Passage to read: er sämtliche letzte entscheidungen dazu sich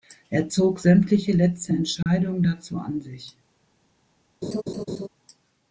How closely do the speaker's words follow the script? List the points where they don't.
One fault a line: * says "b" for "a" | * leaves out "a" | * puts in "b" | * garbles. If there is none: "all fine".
* puts in "zog"
* puts in "an"